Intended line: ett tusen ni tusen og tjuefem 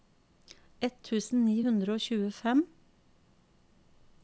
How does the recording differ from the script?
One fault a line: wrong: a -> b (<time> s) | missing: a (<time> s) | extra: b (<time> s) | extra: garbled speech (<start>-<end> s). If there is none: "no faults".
wrong: tusen -> hundre (1.7 s)